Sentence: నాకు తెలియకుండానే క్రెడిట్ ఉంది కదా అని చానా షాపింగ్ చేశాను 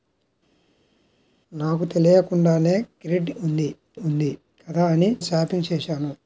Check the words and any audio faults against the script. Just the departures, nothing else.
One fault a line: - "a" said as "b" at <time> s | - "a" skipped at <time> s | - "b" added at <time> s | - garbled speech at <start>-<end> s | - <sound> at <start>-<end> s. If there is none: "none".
- "ఉంది" added at 4.0 s
- "చానా" skipped at 5.1 s